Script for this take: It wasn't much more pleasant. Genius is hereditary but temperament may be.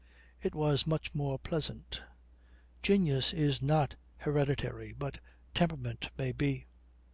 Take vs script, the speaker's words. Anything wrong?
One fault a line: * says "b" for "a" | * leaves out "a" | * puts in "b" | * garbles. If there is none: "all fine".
* says "was" for "wasn't"
* puts in "not"